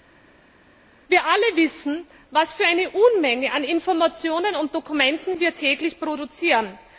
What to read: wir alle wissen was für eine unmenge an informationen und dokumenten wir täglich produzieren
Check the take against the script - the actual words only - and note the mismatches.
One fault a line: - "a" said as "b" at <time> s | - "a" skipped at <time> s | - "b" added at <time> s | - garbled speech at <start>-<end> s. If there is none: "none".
none